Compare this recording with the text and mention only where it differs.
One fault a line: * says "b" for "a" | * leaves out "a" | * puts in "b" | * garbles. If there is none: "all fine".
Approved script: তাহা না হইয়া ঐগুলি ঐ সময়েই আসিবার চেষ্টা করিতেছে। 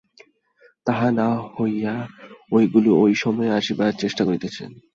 all fine